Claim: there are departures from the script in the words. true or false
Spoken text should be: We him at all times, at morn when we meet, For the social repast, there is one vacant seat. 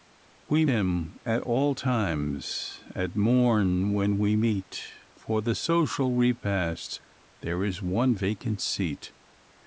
false